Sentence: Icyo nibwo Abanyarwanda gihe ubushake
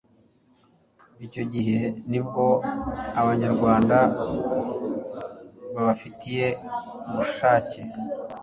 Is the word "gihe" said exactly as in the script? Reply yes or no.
no